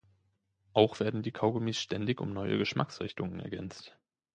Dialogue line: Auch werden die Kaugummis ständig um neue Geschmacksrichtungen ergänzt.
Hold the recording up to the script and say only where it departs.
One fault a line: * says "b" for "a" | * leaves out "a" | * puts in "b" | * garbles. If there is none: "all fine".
all fine